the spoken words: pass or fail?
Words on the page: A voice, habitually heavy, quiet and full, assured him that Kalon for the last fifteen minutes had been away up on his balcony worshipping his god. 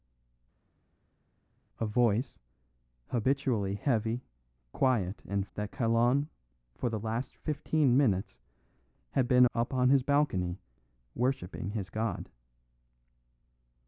fail